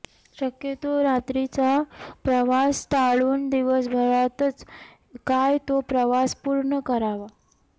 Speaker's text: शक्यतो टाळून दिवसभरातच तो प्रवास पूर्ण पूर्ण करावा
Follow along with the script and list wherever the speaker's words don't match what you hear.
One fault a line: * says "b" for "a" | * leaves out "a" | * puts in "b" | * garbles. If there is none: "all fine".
* puts in "रात्रीचा प्रवास"
* puts in "काय"
* leaves out "पूर्ण"